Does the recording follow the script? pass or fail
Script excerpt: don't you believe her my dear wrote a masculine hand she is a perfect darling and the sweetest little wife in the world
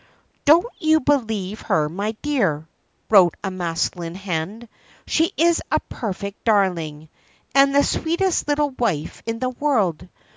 pass